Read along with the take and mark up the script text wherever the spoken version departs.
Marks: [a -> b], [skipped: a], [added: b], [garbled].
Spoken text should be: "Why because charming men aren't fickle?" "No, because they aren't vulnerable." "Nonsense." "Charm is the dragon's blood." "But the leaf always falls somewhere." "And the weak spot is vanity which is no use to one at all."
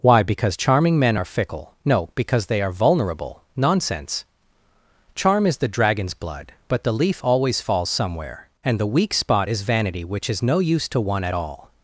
"Why because charming men [aren't -> are] fickle?" "No, because they [aren't -> are] vulnerable." "Nonsense." "Charm is the dragon's blood." "But the leaf always falls somewhere." "And the weak spot is vanity which is no use to one at all."